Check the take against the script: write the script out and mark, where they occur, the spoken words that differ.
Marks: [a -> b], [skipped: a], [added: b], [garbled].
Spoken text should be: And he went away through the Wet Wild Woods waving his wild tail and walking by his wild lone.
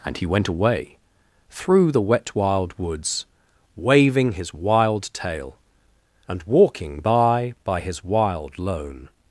And he went away through the Wet Wild Woods waving his wild tail and walking by [added: by] his wild lone.